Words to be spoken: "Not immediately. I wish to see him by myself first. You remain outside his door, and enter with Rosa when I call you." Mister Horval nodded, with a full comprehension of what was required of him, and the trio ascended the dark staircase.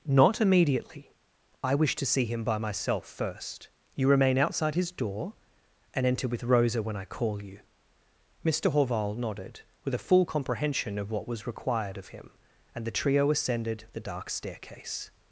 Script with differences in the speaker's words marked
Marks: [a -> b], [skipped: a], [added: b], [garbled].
"Not immediately. I wish to see him by myself first. You remain outside his door, and enter with Rosa when I call you." Mister Horval nodded, with a full comprehension of what was required of him, and the trio ascended the dark staircase.